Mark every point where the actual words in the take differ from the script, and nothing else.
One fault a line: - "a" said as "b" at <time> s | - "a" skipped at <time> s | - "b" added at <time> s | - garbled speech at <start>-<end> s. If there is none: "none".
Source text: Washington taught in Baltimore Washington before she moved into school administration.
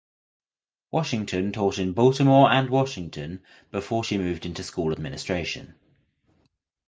- "and" added at 2.5 s